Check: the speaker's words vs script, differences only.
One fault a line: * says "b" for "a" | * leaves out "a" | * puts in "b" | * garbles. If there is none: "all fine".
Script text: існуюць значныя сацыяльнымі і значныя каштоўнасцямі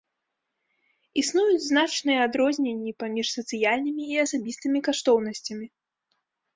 * puts in "адрозненні паміж"
* says "асабістымі" for "значныя"